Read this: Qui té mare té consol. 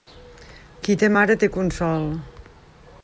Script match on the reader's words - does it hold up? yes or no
yes